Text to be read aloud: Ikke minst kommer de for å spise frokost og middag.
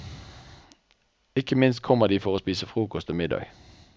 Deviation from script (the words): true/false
false